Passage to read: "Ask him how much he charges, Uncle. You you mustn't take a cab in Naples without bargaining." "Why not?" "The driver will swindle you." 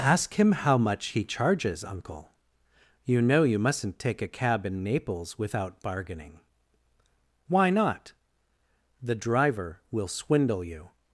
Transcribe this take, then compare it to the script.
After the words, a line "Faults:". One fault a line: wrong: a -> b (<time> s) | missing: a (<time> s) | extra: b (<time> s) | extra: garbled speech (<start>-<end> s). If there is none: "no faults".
"Ask him how much he charges, Uncle. You know you mustn't take a cab in Naples without bargaining." "Why not?" "The driver will swindle you."
Faults:
extra: know (3.2 s)